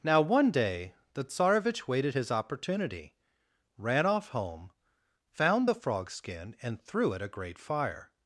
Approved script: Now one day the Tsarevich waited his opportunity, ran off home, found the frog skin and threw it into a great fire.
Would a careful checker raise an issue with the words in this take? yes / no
yes